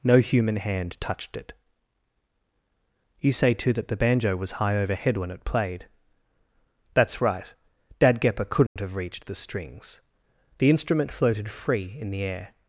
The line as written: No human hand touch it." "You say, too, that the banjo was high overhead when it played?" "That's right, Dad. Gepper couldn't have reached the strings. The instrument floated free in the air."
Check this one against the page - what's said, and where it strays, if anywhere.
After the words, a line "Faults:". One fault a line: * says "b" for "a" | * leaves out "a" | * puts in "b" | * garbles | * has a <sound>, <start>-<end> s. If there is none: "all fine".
No human hand touched it." "You say, too, that the banjo was high overhead when it played?" "That's right, Dad. Gepper couldn't have reached the strings. The instrument floated free in the air."
Faults:
* says "touched" for "touch"
* has a dropout, 8.7-8.8 s